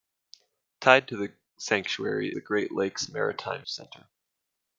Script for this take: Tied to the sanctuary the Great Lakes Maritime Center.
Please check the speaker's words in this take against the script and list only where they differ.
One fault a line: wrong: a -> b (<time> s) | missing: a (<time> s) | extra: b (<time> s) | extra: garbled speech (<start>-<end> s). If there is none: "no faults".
no faults